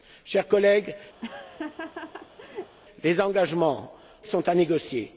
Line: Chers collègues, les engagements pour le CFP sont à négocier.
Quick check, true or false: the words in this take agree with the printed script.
false